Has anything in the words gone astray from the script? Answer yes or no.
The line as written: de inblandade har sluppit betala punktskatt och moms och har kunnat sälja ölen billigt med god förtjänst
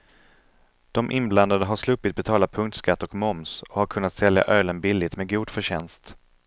no